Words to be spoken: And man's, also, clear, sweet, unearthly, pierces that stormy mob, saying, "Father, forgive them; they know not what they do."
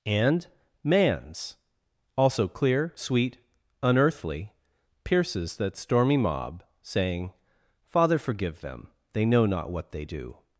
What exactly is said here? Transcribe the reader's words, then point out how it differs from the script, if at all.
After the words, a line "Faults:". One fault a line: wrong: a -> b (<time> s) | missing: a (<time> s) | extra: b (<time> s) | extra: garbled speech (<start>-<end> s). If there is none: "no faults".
And man's, also, clear, sweet, unearthly, pierces that stormy mob, saying, "Father, forgive them; they know not what they do."
Faults:
no faults